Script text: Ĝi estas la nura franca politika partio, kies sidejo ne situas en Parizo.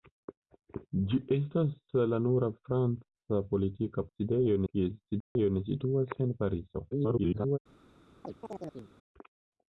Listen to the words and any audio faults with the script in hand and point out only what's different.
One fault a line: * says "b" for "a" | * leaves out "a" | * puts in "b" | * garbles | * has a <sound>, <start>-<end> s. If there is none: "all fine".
* says "sidejo" for "partio"
* has a dropout, 5.2-5.4 s
* garbles
* has a chirp, 8.2-8.9 s